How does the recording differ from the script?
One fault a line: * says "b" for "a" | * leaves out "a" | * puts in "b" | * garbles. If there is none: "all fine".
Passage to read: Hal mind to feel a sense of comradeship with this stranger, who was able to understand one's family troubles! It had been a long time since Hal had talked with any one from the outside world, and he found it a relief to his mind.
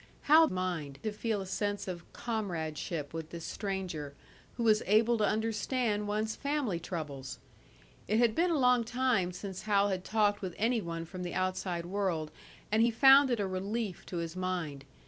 all fine